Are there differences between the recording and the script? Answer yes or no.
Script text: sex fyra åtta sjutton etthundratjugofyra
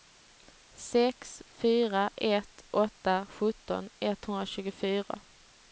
yes